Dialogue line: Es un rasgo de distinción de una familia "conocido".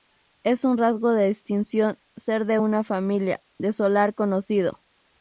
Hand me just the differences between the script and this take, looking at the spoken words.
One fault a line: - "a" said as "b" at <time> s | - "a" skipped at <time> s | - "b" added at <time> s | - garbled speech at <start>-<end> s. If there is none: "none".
- "ser" added at 2.1 s
- "de solar" added at 3.6 s